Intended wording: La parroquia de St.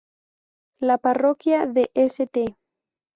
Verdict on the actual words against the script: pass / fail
pass